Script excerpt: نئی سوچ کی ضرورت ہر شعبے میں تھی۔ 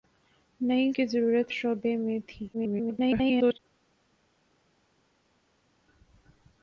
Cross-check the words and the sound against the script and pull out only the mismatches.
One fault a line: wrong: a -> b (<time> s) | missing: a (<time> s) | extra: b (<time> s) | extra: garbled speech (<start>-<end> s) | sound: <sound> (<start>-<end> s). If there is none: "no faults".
missing: سوچ (0.9 s)
missing: ہر (1.5 s)
extra: garbled speech (2.5-3.6 s)